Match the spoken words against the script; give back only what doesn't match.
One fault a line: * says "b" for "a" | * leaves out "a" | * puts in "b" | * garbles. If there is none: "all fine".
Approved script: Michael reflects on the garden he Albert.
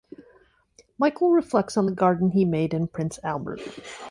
* puts in "made in Prince"